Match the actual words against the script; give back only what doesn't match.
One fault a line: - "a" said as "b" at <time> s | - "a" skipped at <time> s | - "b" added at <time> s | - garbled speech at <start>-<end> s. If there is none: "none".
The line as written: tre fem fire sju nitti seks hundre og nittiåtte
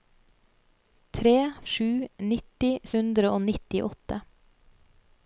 - "fem fire" skipped at 1.3 s
- "seks" skipped at 2.7 s